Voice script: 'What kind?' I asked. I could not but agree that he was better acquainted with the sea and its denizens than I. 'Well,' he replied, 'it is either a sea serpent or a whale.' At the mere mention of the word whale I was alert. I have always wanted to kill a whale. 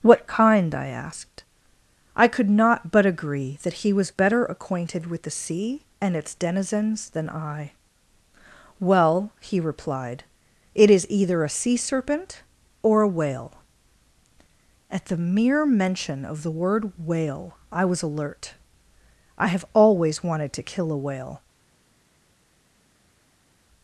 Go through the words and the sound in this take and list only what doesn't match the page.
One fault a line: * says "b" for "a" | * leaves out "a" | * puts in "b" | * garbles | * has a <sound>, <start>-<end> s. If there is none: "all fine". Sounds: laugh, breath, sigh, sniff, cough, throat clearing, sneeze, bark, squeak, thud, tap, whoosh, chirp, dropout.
all fine